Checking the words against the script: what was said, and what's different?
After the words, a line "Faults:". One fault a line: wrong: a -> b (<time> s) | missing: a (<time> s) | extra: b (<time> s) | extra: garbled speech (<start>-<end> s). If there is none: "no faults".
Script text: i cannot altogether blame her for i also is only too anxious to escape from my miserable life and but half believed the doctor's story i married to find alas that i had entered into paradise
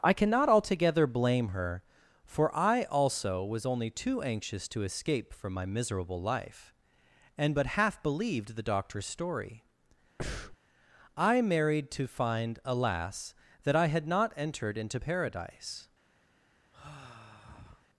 i cannot altogether blame her for i also was only too anxious to escape from my miserable life and but half believed the doctor's story i married to find alas that i had not entered into paradise
Faults:
wrong: is -> was (3.4 s)
extra: not (14.1 s)